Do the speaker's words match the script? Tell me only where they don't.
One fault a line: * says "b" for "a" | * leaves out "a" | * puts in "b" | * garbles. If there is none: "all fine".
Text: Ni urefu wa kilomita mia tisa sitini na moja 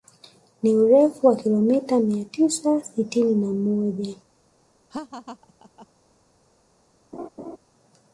all fine